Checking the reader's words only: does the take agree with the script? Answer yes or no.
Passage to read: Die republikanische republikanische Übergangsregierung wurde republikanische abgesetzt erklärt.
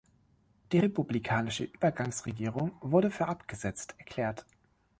no